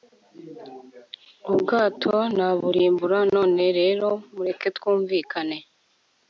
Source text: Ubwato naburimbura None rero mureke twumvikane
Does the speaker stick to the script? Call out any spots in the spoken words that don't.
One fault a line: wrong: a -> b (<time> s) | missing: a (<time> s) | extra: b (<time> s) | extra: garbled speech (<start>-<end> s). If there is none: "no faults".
no faults